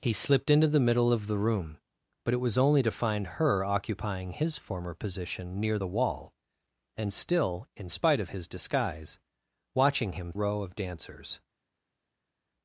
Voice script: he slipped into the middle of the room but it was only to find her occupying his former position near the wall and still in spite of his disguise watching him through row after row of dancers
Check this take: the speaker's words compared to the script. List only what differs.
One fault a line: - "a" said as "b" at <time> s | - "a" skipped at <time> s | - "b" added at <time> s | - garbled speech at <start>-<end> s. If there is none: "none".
- "through row after" skipped at 10.3 s